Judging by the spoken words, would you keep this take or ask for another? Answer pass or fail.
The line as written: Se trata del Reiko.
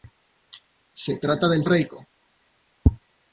pass